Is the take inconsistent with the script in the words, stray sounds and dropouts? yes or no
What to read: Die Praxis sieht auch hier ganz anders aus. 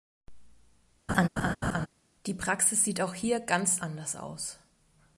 yes